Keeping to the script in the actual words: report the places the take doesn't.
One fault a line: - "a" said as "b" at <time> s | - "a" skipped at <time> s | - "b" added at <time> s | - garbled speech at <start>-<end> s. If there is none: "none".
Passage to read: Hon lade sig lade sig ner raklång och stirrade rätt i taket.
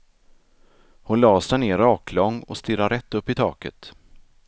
- "lade sig" skipped at 1.6 s
- "upp" added at 3.1 s